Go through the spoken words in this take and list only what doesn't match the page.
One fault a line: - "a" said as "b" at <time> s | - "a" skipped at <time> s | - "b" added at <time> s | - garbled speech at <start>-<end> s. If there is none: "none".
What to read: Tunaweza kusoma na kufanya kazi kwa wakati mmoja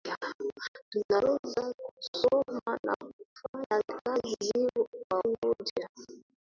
- "wakati" skipped at 5.2 s